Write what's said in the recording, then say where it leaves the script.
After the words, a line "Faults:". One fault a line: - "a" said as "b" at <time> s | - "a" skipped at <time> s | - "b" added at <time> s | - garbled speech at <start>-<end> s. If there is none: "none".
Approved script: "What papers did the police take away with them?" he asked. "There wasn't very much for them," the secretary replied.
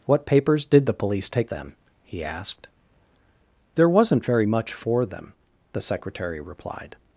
"What papers did the police take them?" he asked. "There wasn't very much for them," the secretary replied.
Faults:
- "away with" skipped at 1.5 s